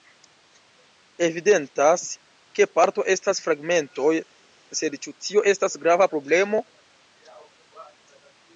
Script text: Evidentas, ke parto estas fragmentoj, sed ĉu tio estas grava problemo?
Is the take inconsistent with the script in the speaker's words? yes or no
no